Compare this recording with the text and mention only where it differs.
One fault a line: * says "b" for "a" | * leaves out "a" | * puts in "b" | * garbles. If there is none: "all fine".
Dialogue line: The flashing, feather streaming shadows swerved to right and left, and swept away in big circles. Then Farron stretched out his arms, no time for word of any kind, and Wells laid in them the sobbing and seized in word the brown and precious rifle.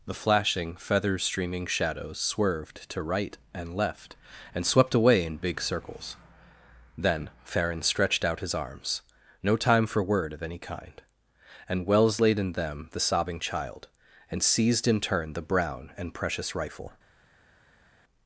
* puts in "child"
* says "turn" for "word"